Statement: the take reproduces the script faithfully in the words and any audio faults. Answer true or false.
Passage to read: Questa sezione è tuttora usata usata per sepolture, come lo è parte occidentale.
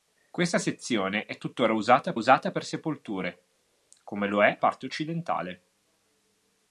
true